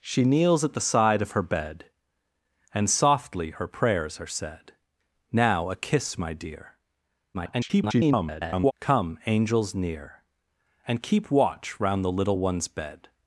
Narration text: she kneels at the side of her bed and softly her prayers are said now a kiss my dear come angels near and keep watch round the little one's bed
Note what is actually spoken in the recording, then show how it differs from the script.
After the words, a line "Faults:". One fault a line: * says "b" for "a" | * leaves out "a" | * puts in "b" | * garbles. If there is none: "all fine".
she kneels at the side of her bed and softly her prayers are said now a kiss my dear [garbled] come angels near and keep watch round the little one's bed
Faults:
* garbles